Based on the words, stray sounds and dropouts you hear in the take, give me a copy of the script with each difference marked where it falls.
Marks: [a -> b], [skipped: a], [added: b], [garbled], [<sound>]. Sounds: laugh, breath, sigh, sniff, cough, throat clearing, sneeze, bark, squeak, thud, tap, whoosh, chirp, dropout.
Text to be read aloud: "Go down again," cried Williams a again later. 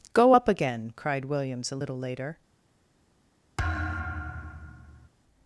"Go [down -> up] again," cried Williams a [again -> little] later. [thud]